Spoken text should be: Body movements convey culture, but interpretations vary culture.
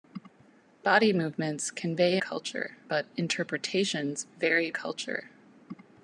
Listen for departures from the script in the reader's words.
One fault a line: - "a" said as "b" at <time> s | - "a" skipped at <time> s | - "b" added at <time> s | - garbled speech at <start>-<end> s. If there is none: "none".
none